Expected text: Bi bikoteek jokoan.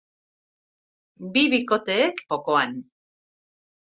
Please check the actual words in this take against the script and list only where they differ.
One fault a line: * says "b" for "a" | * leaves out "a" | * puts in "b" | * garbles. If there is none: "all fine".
all fine